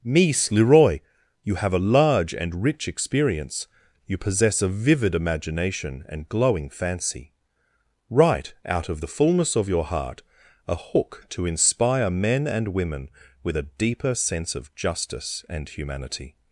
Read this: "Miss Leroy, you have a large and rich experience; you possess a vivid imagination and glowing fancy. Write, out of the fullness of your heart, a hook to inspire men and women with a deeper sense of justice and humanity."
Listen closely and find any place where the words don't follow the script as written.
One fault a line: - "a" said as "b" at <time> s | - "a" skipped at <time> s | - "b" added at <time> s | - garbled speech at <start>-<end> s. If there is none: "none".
none